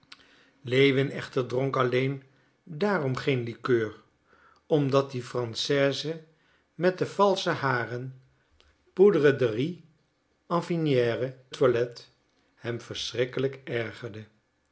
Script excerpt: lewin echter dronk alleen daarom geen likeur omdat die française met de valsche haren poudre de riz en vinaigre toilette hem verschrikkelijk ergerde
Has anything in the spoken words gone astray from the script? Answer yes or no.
no